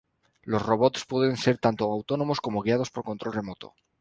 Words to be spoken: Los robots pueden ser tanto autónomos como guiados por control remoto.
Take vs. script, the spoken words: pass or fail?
pass